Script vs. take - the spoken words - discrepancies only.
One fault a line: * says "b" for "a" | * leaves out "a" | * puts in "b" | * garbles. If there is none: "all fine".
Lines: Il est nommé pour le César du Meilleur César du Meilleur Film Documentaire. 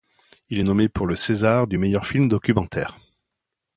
* leaves out "César du Meilleur"